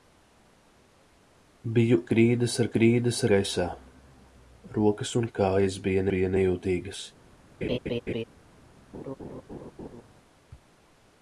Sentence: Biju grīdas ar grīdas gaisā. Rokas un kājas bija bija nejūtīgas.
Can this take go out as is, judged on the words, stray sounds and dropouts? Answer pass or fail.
fail